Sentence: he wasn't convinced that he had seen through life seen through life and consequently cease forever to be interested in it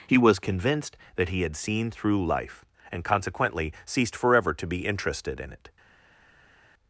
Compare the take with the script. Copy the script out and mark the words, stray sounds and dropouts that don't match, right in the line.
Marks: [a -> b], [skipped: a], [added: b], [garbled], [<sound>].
he [wasn't -> was] convinced that he had seen through life [skipped: seen through life] and consequently [cease -> ceased] forever to be interested in it